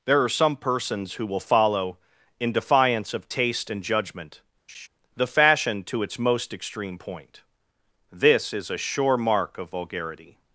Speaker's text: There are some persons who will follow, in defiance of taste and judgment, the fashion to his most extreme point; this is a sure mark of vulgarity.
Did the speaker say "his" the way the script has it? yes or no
no